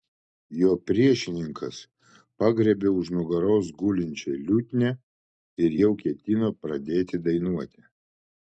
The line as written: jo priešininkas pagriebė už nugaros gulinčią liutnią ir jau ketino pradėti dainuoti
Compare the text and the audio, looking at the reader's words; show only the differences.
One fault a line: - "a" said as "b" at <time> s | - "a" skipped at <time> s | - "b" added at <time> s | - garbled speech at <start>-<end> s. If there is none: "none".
none